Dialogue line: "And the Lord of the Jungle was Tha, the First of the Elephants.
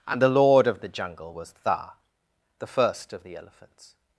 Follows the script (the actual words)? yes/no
yes